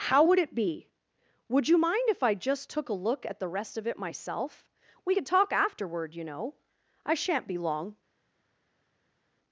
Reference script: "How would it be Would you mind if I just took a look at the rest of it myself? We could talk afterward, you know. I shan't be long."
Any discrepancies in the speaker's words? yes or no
no